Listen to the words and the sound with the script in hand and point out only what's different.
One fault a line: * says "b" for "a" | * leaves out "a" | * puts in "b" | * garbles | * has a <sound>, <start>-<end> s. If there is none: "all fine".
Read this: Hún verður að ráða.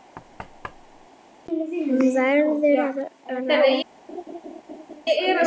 * has a thud, 0.1-1.1 s
* has a laugh, 4.1-5.0 s